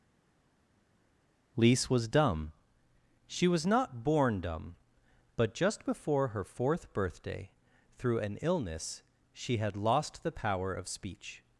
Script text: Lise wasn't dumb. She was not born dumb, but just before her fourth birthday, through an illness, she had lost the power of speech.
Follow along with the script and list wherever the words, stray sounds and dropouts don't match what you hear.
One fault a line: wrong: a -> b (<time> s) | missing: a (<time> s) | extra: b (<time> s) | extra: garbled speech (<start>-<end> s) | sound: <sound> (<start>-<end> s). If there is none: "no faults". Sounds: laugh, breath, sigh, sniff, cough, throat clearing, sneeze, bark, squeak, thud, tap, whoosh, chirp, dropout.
wrong: wasn't -> was (1.9 s)